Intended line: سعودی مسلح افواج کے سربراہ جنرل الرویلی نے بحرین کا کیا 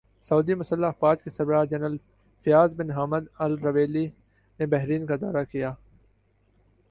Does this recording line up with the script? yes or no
no